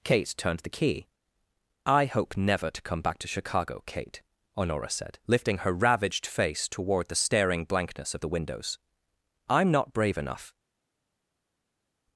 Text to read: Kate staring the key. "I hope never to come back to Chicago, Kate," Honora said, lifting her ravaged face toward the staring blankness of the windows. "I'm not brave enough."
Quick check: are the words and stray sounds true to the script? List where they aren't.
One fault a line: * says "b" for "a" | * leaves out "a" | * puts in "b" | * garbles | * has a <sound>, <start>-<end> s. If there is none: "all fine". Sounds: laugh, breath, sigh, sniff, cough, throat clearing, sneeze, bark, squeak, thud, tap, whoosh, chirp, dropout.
* says "turned" for "staring"